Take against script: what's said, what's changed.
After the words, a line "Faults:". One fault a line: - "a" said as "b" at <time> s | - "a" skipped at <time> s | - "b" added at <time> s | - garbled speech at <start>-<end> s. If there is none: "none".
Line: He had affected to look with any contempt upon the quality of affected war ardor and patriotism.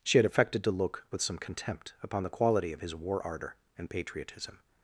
She had affected to look with some contempt upon the quality of his war ardor and patriotism.
Faults:
- "He" said as "She" at 0.0 s
- "any" said as "some" at 1.2 s
- "affected" said as "his" at 2.8 s